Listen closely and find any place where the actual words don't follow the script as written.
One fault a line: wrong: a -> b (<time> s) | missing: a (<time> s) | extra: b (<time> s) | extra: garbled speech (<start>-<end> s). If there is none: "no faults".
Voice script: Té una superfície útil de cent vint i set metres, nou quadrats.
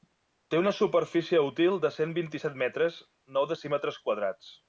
extra: decímetres (3.5 s)